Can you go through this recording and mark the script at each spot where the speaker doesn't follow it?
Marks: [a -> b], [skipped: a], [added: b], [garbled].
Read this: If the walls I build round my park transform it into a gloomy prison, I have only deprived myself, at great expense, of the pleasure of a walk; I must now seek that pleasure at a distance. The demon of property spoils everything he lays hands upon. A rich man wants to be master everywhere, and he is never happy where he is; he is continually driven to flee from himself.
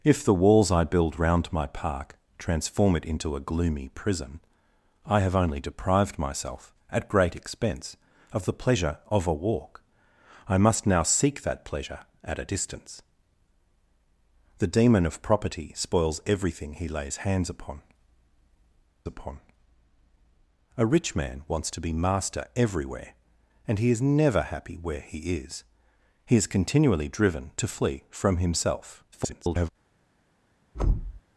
If the walls I build round my park transform it into a gloomy prison, I have only deprived myself, at great expense, of the pleasure of a walk; I must now seek that pleasure at a distance. The demon of property spoils everything he lays hands upon. [added: upon] A rich man wants to be master everywhere, and he is never happy where he is; he is continually driven to flee from himself. [garbled]